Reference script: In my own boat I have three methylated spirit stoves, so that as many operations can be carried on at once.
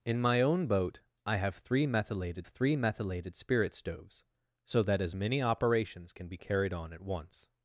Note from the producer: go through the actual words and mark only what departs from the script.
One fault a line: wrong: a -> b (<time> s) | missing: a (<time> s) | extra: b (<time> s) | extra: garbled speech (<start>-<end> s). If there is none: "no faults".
extra: three methylated (2.5 s)